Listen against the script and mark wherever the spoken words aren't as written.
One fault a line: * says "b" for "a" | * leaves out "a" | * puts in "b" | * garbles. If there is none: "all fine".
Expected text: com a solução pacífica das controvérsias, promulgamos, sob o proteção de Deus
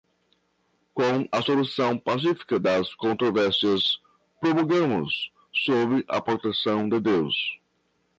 * says "a" for "o"